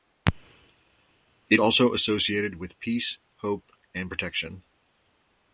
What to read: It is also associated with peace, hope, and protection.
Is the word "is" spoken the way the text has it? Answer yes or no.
no